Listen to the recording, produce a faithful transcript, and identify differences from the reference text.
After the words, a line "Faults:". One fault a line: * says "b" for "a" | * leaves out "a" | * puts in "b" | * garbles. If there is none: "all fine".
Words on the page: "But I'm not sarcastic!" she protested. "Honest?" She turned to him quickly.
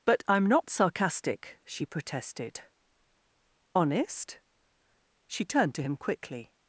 "But I'm not sarcastic!" she protested. "Honest?" She turned to him quickly.
Faults:
all fine